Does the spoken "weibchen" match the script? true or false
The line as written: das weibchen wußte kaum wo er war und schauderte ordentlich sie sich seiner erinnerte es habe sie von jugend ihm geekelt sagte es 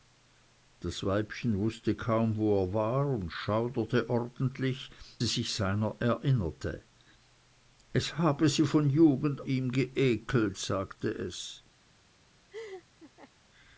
true